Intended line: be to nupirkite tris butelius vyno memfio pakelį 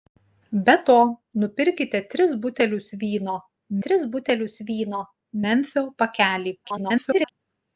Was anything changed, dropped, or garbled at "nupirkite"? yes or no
no